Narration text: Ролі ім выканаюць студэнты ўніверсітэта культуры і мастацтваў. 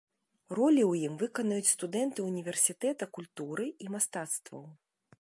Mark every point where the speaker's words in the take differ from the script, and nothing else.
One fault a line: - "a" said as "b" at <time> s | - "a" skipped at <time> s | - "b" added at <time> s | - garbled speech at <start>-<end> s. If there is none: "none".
- "ў" added at 0.9 s